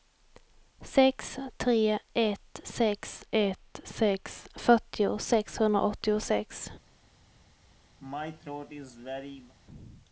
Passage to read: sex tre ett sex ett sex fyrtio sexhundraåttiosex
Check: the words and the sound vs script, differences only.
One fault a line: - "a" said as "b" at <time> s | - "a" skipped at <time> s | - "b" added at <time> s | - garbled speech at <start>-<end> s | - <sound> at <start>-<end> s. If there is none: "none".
- throat clearing at 8.0-9.5 s